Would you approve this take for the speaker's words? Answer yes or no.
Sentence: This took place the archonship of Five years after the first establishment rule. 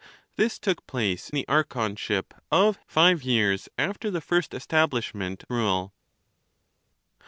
yes